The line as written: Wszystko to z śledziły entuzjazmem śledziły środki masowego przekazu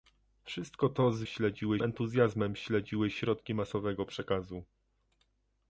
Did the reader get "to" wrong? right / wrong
right